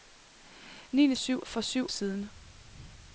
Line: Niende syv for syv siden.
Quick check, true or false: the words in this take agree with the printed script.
true